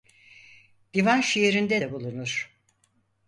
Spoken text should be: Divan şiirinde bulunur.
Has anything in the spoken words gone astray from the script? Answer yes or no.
yes